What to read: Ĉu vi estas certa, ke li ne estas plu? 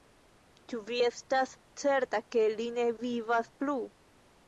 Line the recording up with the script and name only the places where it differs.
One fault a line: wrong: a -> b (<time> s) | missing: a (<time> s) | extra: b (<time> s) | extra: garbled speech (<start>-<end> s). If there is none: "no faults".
wrong: estas -> vivas (3.1 s)